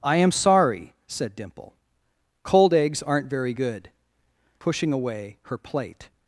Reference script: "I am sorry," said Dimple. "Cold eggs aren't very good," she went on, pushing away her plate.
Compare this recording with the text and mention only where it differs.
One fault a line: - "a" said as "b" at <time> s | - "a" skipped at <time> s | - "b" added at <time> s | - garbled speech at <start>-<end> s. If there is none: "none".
- "she went on" skipped at 3.9 s